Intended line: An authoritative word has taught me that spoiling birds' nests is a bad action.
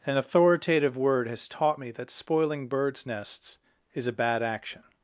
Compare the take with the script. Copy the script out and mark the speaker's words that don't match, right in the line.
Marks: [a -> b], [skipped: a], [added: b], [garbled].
An authoritative word has taught me that spoiling birds' nests is a bad action.